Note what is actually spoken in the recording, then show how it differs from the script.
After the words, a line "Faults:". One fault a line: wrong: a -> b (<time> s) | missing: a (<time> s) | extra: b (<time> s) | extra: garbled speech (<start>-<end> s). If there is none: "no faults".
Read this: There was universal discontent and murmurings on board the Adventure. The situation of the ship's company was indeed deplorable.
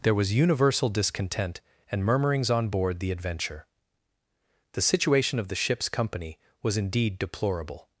There was universal discontent and murmurings on board the Adventure. The situation of the ship's company was indeed deplorable.
Faults:
no faults